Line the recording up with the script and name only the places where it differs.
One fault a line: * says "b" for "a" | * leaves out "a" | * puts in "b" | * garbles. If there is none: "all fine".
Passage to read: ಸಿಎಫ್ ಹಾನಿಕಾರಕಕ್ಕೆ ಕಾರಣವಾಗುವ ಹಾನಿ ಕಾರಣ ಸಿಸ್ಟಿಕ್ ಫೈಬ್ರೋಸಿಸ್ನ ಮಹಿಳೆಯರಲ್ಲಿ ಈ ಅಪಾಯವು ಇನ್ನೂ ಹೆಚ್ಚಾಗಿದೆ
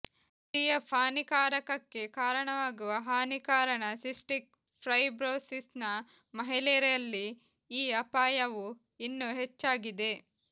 all fine